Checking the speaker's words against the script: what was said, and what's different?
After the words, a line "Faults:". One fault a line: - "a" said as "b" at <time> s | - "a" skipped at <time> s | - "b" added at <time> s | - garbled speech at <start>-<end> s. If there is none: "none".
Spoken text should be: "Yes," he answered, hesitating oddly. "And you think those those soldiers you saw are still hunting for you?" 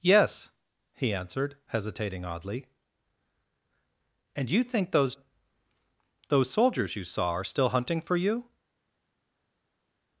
"Yes," he answered, hesitating oddly. "And you think those those soldiers you saw are still hunting for you?"
Faults:
none